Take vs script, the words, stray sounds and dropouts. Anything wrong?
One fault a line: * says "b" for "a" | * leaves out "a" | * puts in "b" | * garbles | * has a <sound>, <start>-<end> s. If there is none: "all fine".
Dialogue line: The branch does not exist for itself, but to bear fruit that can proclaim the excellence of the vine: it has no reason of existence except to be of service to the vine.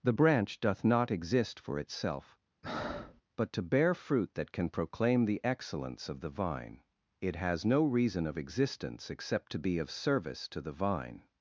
* says "doth" for "does"
* has a breath, 2.6-3.2 s